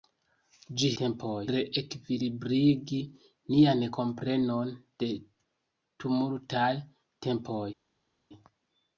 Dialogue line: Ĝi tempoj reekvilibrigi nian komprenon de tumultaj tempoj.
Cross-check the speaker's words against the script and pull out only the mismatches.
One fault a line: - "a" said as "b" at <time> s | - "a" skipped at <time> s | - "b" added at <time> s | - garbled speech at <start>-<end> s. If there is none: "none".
none